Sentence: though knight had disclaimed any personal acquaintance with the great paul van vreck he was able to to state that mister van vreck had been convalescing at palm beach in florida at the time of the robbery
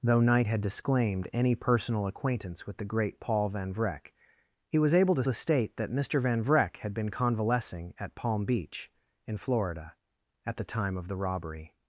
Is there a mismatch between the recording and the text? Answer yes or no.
no